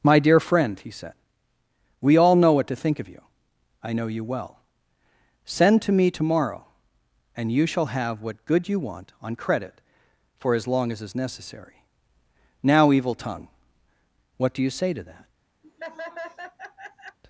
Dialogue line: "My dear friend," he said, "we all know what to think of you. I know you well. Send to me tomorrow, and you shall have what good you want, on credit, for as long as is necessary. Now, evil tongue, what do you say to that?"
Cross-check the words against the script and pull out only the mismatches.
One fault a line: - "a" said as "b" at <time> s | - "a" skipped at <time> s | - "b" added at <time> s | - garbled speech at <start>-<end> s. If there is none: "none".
none